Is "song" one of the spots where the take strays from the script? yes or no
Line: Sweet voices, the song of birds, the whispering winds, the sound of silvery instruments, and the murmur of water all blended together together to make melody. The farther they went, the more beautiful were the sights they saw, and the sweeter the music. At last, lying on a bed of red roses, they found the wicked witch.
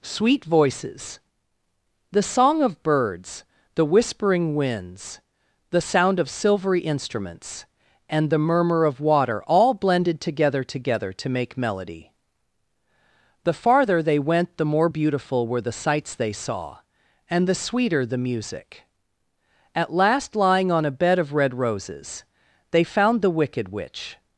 no